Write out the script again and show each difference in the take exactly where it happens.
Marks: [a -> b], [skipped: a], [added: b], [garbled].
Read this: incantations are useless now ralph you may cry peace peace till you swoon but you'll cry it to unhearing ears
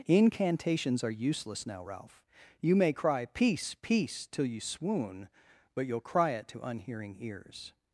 incantations are useless now ralph you may cry peace peace till you swoon but you'll cry it to unhearing ears